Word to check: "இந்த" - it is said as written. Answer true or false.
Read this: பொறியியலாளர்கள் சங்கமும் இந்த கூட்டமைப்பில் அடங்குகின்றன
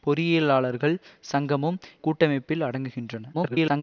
false